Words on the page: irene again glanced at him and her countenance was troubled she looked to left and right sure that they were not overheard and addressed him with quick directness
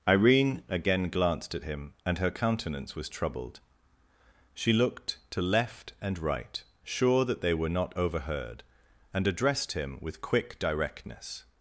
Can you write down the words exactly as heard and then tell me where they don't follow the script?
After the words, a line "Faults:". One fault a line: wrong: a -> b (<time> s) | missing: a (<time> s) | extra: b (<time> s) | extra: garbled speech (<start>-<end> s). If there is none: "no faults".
irene again glanced at him and her countenance was troubled she looked to left and right sure that they were not overheard and addressed him with quick directness
Faults:
no faults